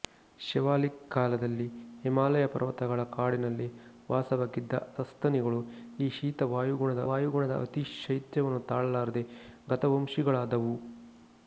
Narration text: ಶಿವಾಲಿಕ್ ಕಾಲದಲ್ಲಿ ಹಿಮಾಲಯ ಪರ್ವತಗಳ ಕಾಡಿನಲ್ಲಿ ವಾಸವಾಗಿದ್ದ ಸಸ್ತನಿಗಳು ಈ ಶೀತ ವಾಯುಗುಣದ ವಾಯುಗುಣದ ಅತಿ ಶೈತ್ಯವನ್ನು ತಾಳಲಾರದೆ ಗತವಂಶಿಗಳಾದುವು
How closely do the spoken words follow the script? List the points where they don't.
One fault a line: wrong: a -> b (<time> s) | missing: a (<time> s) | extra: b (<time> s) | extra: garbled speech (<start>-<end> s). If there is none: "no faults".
no faults